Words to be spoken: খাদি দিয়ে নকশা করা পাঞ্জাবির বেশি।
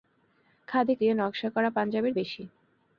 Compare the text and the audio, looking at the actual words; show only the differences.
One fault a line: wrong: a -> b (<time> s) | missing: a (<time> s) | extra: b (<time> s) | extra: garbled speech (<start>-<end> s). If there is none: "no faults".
no faults